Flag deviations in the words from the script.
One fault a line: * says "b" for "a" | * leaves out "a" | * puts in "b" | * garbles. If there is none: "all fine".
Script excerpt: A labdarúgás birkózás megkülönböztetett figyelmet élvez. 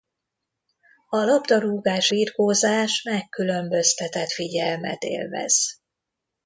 all fine